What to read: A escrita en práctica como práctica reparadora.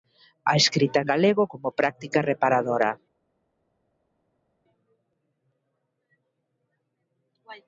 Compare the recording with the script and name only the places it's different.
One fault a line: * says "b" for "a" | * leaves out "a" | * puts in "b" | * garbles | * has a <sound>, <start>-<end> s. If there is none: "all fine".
* says "galego" for "práctica"